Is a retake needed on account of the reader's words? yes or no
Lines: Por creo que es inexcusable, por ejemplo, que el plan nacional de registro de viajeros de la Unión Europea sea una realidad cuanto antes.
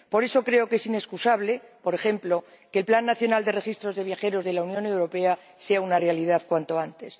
yes